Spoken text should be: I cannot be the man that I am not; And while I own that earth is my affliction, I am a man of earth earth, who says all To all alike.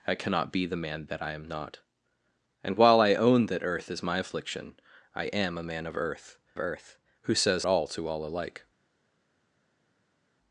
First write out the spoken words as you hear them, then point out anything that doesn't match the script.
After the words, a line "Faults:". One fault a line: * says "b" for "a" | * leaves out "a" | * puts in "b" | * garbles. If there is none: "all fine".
I cannot be the man that I am not; And while I own that earth is my affliction, I am a man of earth earth, who says all To all alike.
Faults:
all fine